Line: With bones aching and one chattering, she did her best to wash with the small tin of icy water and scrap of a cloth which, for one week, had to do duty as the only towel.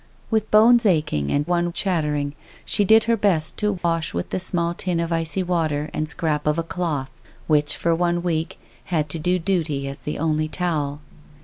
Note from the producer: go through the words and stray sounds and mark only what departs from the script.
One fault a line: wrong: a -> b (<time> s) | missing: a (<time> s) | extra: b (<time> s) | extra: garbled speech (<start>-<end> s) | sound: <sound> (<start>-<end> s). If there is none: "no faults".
sound: dropout (3.8-3.8 s)